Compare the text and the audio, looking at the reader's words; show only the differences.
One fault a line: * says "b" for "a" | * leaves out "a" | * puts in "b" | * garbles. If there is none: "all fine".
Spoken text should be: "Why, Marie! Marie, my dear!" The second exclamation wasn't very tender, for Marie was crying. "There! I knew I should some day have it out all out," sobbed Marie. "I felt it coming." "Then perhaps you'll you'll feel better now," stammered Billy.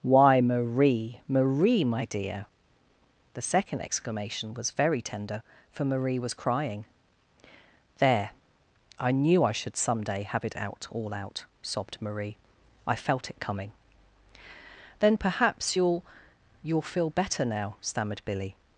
* says "was" for "wasn't"